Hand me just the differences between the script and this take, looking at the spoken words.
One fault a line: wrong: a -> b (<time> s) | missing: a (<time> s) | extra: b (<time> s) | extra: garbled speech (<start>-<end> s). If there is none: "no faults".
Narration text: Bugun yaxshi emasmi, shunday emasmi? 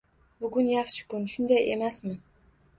wrong: emasmi -> kun (1.1 s)